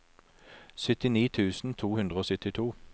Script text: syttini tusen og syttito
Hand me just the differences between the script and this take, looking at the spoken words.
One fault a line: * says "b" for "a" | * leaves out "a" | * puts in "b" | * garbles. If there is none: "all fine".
* puts in "to hundre"